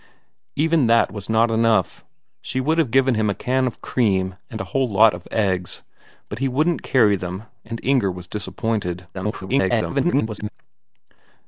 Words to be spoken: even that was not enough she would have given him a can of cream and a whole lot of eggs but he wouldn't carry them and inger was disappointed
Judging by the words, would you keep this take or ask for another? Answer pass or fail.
fail